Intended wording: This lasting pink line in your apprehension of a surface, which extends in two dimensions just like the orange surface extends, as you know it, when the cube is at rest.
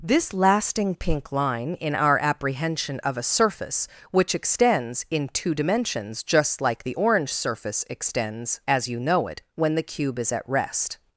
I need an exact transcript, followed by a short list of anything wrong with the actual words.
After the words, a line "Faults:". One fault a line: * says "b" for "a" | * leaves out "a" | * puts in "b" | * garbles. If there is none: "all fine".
This lasting pink line in our apprehension of a surface, which extends in two dimensions just like the orange surface extends, as you know it, when the cube is at rest.
Faults:
* says "our" for "your"